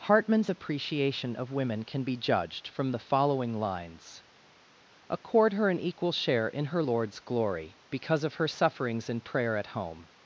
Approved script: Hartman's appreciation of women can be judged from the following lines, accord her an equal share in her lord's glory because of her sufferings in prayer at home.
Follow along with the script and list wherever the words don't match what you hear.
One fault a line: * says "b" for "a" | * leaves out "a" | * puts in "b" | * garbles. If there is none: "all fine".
all fine